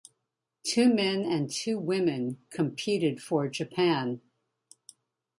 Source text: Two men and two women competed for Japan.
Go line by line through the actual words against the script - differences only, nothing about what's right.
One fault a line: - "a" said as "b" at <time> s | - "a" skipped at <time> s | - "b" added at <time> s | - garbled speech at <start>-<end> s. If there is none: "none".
none